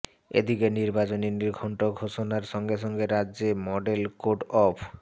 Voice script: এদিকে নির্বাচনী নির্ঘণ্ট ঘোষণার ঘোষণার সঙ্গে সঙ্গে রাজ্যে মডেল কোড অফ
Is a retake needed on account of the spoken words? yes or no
yes